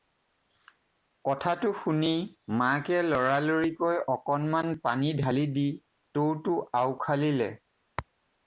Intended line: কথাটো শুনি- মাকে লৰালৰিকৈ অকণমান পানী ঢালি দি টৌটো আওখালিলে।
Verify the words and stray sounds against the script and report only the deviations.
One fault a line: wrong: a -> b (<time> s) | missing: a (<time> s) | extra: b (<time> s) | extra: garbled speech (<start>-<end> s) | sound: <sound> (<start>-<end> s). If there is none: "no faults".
no faults